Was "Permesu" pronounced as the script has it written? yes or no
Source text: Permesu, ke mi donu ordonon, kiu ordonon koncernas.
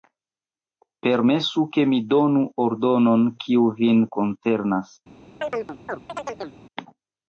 yes